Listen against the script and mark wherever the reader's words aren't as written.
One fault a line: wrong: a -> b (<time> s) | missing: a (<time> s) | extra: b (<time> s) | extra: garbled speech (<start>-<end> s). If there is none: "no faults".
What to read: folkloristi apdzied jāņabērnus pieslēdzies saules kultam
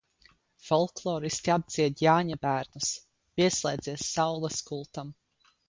no faults